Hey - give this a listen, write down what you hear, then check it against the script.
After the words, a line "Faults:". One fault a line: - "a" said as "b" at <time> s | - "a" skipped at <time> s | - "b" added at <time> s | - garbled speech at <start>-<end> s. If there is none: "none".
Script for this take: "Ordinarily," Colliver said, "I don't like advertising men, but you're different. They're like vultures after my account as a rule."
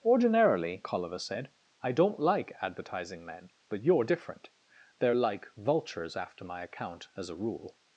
"Ordinarily," Colliver said, "I don't like advertising men, but you're different. They're like vultures after my account as a rule."
Faults:
none